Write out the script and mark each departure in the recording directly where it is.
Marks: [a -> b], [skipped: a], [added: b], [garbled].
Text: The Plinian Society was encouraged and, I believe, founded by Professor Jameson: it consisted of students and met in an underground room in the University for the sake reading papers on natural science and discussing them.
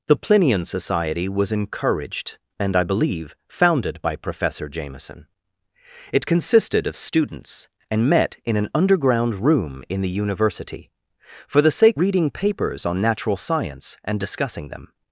The Plinian Society was encouraged and, I believe, founded by Professor Jameson: it consisted of students and met in an underground room in the University for the sake reading papers on natural science and discussing them.